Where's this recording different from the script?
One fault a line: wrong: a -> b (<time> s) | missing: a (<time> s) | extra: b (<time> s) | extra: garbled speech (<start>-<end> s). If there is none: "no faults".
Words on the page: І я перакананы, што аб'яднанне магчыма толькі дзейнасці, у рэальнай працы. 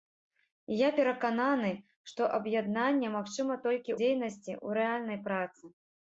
no faults